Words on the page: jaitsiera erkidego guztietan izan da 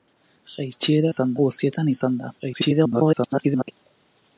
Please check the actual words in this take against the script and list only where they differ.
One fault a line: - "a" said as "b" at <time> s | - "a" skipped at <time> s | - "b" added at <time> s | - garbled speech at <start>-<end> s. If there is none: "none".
- "erkidego" said as "izan" at 1.1 s
- garbled speech at 2.4-3.7 s